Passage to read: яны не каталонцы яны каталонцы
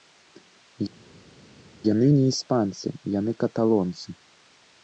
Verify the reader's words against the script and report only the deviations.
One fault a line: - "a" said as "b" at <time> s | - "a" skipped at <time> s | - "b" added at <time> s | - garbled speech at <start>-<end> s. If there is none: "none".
- "каталонцы" said as "іспанцы" at 2.3 s